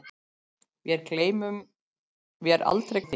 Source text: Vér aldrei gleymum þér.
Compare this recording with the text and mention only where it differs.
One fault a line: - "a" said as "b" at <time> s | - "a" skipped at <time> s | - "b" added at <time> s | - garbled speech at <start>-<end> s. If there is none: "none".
- "gleymum" skipped at 3.0 s